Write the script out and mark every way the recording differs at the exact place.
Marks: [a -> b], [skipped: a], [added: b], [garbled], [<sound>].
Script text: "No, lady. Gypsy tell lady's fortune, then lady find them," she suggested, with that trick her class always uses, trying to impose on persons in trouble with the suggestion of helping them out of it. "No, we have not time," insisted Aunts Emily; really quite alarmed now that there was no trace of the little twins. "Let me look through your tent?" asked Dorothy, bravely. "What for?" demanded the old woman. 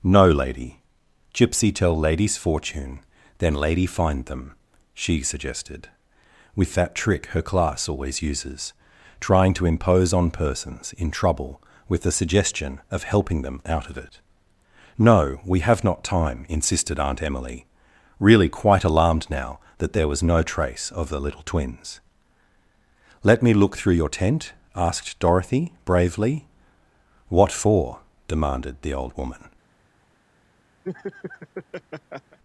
"No, lady. Gypsy tell lady's fortune, then lady find them," she suggested, with that trick her class always uses, trying to impose on persons in trouble with the suggestion of helping them out of it. "No, we have not time," insisted [Aunts -> Aunt] Emily; really quite alarmed now that there was no trace of the little twins. "Let me look through your tent?" asked Dorothy, bravely. "What for?" demanded the old woman. [laugh]